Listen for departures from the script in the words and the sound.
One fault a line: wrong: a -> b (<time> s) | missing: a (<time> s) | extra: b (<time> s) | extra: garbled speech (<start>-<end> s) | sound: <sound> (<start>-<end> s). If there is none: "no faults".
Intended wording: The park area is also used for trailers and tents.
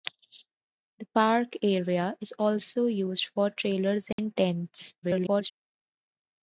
sound: dropout (4.1-4.2 s)
extra: garbled speech (5.0-5.5 s)